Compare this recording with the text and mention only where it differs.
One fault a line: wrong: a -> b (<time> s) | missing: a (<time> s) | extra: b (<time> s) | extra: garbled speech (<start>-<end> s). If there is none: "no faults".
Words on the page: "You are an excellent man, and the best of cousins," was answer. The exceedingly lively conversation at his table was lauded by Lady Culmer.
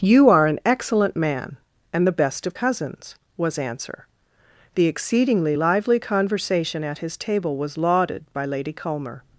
no faults